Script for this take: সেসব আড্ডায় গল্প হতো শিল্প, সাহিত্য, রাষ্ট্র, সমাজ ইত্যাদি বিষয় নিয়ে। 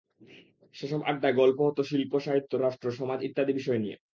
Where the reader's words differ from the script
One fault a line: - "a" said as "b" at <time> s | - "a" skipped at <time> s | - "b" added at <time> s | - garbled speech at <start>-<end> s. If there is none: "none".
none